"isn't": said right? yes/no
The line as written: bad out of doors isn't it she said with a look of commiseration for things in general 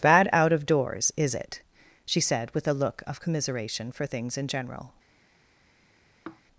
no